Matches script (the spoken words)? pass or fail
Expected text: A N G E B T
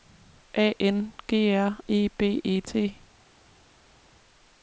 fail